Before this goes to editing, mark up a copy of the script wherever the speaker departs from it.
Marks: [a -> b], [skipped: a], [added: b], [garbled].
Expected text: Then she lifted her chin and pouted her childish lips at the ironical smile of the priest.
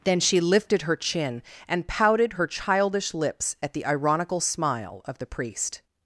Then she lifted her chin and pouted her childish lips at the ironical smile of the priest.